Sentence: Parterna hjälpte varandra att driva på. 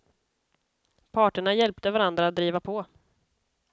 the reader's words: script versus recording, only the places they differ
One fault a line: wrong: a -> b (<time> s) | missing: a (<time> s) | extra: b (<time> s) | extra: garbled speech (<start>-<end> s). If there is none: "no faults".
no faults